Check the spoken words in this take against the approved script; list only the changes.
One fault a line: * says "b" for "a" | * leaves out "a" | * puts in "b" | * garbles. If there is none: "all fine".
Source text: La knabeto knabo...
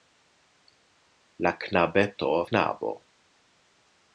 all fine